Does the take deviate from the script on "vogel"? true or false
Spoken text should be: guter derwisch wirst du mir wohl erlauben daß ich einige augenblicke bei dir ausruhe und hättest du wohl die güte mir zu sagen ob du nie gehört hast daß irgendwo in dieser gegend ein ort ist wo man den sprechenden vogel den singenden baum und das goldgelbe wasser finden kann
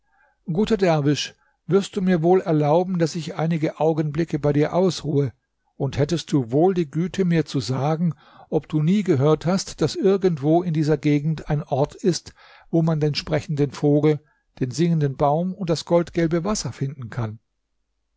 false